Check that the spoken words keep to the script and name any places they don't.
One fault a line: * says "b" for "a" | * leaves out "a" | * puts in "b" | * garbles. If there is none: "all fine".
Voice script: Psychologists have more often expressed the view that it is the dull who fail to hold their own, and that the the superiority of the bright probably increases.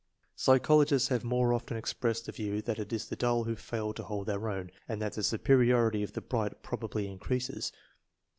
* leaves out "the"